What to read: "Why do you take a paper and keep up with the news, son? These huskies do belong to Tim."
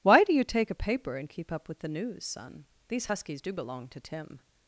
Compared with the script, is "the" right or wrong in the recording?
right